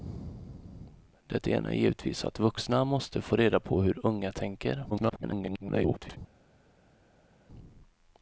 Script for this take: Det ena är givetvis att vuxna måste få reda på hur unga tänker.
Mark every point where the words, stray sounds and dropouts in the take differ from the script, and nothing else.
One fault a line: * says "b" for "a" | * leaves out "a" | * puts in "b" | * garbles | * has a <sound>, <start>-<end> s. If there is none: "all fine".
* garbles